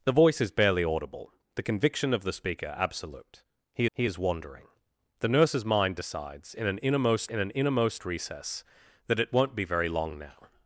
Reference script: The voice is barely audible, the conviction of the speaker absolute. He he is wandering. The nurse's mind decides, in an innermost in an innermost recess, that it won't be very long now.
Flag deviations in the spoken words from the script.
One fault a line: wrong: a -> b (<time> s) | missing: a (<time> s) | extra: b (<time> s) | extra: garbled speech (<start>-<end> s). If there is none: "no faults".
no faults